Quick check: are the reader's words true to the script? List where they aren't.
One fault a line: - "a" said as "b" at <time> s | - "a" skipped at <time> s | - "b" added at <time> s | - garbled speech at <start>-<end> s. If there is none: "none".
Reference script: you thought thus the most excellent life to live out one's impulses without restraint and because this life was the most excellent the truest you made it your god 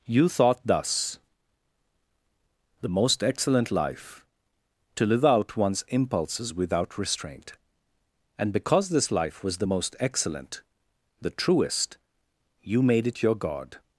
none